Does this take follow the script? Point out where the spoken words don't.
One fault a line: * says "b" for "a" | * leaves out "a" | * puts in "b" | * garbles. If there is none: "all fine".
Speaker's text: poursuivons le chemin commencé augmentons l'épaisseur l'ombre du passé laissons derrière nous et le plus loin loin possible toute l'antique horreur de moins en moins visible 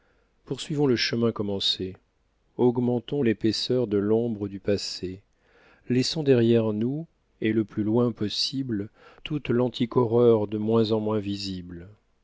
* puts in "de"
* leaves out "loin"